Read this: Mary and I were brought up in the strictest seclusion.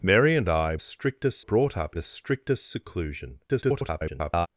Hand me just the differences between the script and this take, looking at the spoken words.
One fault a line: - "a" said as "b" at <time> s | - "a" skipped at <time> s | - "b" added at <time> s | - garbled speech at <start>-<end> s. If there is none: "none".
- "were" said as "strictest" at 0.8 s
- "in" skipped at 1.9 s
- garbled speech at 3.5-4.5 s